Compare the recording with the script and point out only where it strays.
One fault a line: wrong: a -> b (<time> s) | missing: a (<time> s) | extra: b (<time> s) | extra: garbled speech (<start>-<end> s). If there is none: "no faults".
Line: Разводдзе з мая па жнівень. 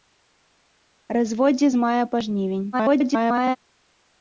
extra: garbled speech (2.7-3.6 s)